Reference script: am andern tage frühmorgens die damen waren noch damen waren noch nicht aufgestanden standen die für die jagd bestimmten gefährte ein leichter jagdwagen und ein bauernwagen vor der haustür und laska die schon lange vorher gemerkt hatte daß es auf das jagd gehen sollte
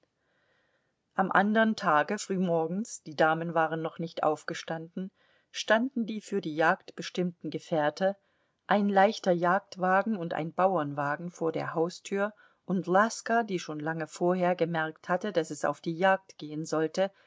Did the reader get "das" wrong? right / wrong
wrong